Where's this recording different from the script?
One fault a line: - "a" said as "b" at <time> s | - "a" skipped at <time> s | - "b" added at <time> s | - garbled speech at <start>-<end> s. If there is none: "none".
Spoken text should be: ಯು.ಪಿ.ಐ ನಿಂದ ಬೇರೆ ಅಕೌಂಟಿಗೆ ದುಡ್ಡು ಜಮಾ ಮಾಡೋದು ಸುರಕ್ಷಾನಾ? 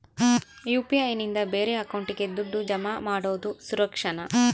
none